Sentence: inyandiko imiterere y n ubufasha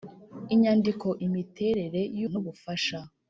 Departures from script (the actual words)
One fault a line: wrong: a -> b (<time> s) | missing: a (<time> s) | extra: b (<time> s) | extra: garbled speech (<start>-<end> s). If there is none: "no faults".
no faults